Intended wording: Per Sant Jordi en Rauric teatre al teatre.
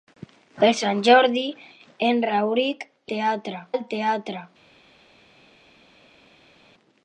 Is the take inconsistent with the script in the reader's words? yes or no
no